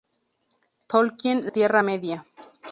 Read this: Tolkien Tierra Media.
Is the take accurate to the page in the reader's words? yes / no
yes